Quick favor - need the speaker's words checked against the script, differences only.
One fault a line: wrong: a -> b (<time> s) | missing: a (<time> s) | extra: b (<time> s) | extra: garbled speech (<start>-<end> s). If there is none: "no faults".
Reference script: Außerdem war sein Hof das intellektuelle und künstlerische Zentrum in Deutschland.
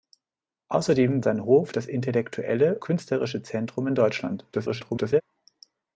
missing: war (1.2 s)
missing: und (2.8 s)
extra: garbled speech (4.5-5.2 s)